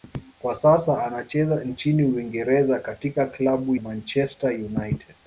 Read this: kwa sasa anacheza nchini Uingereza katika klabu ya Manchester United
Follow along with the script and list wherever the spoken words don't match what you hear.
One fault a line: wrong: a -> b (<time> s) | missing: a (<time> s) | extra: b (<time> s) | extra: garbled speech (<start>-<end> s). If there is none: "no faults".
missing: ya (3.7 s)